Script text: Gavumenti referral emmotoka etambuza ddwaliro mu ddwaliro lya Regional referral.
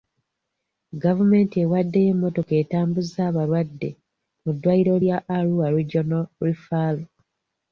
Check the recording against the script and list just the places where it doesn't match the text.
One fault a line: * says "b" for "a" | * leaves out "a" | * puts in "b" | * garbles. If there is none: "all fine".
* says "ewaddeyo" for "referral"
* says "abalwadde" for "ddwaliro"
* puts in "Arua"